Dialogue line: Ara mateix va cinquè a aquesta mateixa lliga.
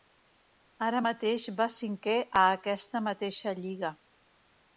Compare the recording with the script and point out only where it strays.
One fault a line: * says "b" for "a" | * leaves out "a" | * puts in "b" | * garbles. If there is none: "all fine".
all fine